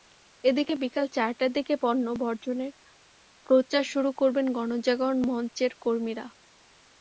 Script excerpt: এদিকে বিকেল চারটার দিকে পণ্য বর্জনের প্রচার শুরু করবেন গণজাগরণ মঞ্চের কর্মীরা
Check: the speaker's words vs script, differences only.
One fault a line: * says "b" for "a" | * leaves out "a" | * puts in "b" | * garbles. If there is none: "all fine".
all fine